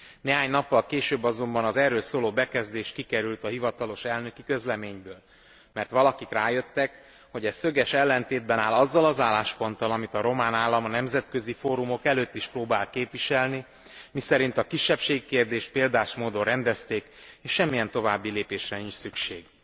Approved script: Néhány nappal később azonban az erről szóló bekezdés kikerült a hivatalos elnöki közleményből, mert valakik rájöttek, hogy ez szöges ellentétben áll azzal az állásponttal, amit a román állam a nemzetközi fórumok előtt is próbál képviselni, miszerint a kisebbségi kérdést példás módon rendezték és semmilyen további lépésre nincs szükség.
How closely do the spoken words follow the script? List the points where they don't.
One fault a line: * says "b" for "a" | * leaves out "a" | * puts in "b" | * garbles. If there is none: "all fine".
all fine